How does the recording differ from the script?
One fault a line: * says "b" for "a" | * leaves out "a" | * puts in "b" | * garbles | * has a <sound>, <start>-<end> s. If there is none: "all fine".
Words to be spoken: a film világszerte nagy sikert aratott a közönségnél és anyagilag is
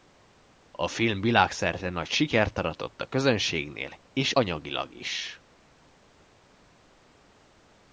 all fine